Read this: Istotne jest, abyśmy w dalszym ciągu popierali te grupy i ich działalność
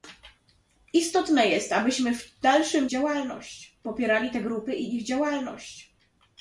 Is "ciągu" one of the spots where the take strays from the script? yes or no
yes